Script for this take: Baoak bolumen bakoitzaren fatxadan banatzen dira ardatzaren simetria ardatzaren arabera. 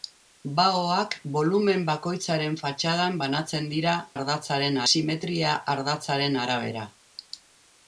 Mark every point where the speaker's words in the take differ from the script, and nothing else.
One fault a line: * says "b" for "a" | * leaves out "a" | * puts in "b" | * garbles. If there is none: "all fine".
all fine